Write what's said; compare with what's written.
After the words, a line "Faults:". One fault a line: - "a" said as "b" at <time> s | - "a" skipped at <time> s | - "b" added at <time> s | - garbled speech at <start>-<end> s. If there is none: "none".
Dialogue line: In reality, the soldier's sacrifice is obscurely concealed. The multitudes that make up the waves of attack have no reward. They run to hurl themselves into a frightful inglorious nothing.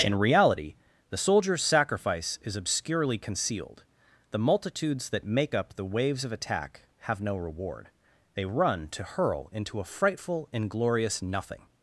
In reality, the soldier's sacrifice is obscurely concealed. The multitudes that make up the waves of attack have no reward. They run to hurl into a frightful inglorious nothing.
Faults:
- "themselves" skipped at 9.5 s